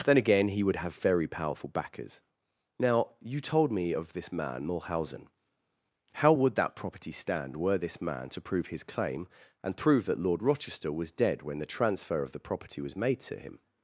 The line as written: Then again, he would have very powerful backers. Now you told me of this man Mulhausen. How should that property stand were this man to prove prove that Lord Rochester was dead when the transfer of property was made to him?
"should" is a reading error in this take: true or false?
true